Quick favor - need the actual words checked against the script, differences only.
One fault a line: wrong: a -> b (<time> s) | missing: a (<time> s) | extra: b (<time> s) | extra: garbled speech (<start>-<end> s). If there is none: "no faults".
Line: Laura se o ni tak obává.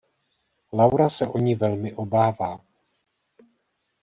wrong: tak -> velmi (1.5 s)